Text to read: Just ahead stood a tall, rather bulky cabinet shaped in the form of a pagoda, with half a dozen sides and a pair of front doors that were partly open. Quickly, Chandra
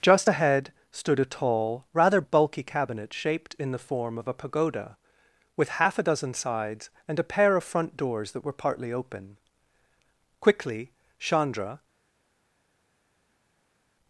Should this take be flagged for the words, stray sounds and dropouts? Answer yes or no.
no